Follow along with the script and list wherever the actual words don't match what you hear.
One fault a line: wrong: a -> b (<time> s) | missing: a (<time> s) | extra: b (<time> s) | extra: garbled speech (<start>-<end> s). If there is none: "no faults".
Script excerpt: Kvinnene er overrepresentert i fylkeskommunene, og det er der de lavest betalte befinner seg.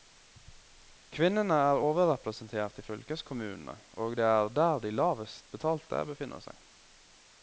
no faults